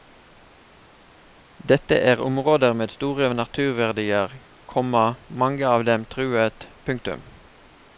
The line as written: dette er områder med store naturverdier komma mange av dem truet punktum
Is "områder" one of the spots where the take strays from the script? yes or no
no